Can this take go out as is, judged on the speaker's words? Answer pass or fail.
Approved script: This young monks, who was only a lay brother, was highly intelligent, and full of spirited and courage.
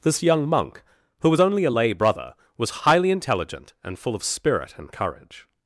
fail